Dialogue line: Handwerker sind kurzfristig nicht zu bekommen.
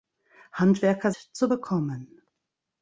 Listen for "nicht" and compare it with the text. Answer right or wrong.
wrong